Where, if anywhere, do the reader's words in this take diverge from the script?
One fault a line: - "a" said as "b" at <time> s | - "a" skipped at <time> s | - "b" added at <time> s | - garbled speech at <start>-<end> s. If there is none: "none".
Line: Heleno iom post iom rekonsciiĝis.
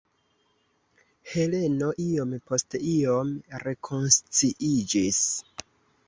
none